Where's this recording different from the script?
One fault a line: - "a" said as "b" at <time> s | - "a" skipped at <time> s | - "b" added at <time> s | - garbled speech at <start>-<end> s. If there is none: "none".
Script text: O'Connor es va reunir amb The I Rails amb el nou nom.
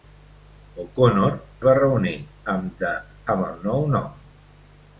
- "es" skipped at 1.4 s
- "I Rails" skipped at 2.9 s